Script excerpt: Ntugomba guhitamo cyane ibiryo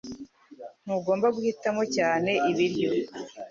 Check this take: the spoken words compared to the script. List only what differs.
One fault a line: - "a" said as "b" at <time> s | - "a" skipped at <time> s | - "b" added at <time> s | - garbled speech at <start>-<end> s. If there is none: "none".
none